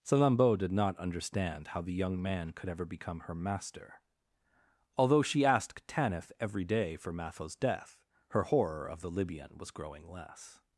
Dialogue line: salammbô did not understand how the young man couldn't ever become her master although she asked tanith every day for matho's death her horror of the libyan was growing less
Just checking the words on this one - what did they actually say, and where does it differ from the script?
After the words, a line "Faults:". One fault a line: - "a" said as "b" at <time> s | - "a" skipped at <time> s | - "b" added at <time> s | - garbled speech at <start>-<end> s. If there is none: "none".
salammbô did not understand how the young man could ever become her master although she asked tanith every day for matho's death her horror of the libyan was growing less
Faults:
- "couldn't" said as "could" at 2.5 s